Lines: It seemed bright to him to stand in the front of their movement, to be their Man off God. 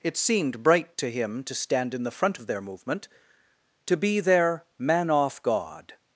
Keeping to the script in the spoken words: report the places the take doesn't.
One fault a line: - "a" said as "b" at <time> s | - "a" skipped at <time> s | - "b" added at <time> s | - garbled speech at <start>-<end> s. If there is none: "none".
none